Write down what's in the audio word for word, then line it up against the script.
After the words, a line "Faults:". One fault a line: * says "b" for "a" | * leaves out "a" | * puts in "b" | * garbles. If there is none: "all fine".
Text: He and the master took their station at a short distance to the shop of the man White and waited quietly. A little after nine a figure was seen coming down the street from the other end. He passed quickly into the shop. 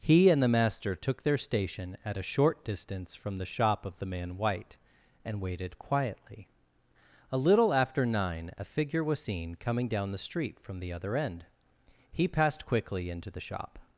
He and the master took their station at a short distance from the shop of the man White and waited quietly. A little after nine a figure was seen coming down the street from the other end. He passed quickly into the shop.
Faults:
* says "from" for "to"